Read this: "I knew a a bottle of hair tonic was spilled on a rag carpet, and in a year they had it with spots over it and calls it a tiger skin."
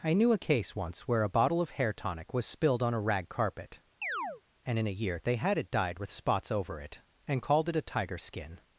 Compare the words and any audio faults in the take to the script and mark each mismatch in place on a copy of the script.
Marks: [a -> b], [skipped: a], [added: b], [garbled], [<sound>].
"I knew a [added: case once where] a bottle of hair tonic was spilled on a rag carpet, [chirp] and in a year they had it [added: dyed] with spots over it and [calls -> called] it a tiger skin."